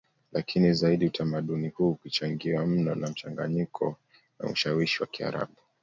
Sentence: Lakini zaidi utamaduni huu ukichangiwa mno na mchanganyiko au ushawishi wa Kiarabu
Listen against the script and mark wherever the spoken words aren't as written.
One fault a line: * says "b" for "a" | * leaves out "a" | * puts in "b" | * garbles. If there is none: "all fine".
* says "na" for "au"